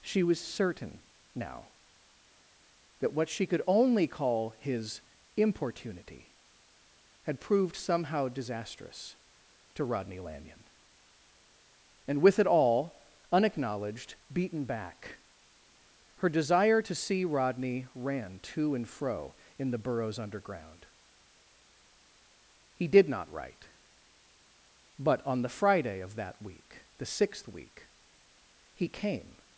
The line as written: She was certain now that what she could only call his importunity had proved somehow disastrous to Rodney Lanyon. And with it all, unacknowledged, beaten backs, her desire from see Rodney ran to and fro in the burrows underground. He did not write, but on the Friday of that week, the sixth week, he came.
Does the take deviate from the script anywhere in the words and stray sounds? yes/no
yes